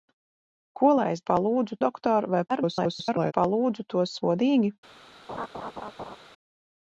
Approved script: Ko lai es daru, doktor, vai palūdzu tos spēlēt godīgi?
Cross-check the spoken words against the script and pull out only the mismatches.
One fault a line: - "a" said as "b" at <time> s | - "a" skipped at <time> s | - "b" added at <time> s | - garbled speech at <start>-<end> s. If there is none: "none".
- "daru" said as "palūdzu" at 1.3 s
- garbled speech at 2.5-3.3 s
- "spēlēt" skipped at 4.2 s